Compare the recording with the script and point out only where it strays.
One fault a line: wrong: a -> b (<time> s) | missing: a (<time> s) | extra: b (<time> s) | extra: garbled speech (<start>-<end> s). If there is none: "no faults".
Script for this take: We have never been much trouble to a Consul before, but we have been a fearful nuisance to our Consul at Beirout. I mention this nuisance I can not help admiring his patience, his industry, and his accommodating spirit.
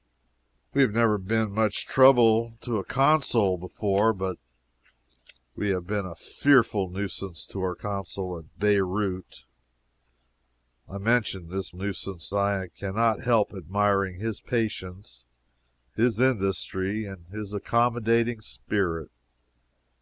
no faults